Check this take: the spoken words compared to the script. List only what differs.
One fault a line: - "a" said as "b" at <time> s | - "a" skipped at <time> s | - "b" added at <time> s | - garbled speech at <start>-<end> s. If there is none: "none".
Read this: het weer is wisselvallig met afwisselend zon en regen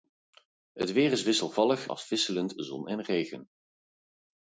- "met" skipped at 1.9 s